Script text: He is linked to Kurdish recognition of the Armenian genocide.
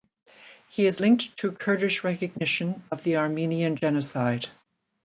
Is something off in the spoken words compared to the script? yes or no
no